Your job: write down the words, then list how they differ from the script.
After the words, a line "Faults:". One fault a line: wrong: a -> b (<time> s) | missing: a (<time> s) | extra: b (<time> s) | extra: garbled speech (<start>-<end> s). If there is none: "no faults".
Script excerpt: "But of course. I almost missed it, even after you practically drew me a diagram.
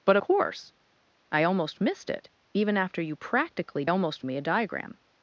"But course. I almost missed it, even after you practically almost me a diagram.
Faults:
missing: of (0.2 s)
wrong: drew -> almost (3.9 s)